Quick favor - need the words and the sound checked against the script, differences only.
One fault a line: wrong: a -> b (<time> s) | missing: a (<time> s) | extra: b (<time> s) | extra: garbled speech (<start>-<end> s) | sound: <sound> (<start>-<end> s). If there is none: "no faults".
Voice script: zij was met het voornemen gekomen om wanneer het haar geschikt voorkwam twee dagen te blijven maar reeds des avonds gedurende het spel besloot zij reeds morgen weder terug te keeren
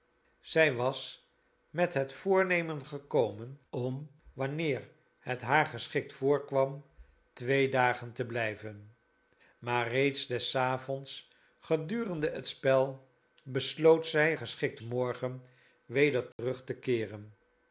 wrong: reeds -> geschikt (14.3 s)
sound: dropout (16.3-16.4 s)